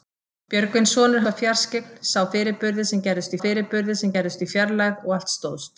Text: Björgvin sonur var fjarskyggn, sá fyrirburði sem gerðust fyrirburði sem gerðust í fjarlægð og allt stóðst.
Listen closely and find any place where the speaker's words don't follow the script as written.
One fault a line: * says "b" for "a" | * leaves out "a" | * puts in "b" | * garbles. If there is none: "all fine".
all fine